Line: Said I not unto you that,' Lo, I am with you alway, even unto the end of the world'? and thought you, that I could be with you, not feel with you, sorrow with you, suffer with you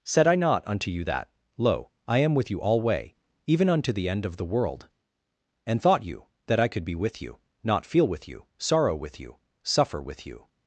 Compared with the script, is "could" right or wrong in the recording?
right